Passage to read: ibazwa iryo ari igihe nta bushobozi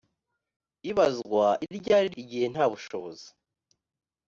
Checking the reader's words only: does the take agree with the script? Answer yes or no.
yes